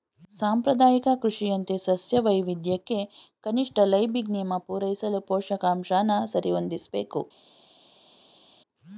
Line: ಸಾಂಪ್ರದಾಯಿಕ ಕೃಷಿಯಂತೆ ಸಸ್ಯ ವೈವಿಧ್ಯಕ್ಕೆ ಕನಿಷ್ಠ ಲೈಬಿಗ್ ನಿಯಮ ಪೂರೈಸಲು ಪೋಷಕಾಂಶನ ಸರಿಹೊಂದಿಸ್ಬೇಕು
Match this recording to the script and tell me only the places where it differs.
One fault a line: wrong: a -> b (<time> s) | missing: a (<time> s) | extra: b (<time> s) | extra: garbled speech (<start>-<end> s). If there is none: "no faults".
no faults